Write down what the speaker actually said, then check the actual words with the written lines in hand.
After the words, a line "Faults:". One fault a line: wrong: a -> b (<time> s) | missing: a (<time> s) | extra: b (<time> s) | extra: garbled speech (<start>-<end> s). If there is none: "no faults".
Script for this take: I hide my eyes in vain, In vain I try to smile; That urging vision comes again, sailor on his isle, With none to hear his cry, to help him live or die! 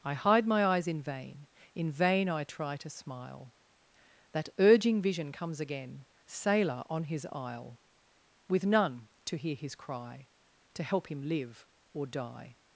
I hide my eyes in vain, In vain I try to smile; That urging vision comes again, sailor on his isle, With none to hear his cry, to help him live or die!
Faults:
no faults